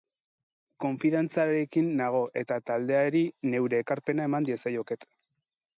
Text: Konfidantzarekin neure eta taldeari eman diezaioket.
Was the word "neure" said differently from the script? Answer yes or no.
yes